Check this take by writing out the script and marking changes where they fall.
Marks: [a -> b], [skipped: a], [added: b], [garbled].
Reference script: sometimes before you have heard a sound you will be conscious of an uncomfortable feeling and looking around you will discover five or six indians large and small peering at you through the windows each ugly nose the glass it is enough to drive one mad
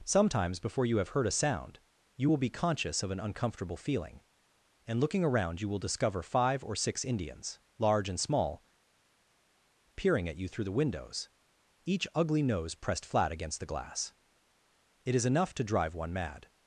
sometimes before you have heard a sound you will be conscious of an uncomfortable feeling and looking around you will discover five or six indians large and small peering at you through the windows each ugly nose [added: pressed flat against] the glass it is enough to drive one mad